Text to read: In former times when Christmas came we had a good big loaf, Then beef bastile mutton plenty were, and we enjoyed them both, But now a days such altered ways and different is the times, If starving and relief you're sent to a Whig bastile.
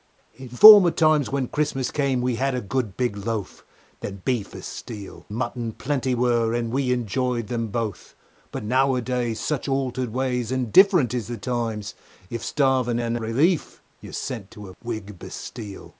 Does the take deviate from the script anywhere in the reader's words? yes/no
no